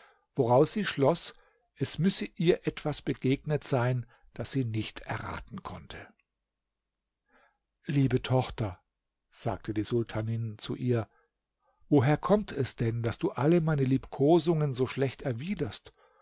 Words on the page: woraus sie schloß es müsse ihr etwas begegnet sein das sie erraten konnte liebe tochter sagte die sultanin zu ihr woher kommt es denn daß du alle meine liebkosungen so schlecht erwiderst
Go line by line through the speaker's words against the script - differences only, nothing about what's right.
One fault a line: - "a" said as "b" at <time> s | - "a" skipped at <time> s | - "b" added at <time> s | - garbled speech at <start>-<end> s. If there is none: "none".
- "nicht" added at 4.7 s